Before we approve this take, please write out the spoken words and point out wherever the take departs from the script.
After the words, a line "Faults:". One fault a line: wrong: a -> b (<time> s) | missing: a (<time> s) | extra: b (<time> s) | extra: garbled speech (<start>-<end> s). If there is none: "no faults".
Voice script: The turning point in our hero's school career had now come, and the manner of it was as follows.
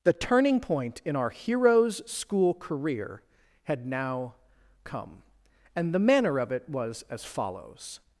The turning point in our hero's school career had now come, and the manner of it was as follows.
Faults:
no faults